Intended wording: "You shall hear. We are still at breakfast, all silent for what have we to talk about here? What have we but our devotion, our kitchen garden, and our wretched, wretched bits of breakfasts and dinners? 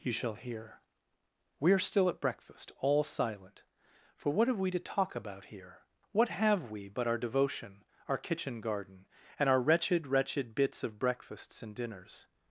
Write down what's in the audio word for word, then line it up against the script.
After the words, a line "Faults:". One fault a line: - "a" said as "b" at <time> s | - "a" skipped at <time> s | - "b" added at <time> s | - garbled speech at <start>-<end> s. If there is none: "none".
"You shall hear. We are still at breakfast, all silent for what have we to talk about here? What have we but our devotion, our kitchen garden, and our wretched, wretched bits of breakfasts and dinners?
Faults:
none